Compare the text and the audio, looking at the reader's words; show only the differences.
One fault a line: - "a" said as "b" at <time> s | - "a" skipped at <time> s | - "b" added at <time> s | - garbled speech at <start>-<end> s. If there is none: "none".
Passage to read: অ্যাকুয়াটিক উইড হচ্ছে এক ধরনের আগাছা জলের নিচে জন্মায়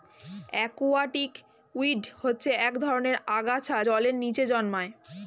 none